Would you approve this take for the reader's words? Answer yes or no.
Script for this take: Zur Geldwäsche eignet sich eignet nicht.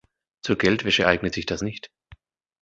no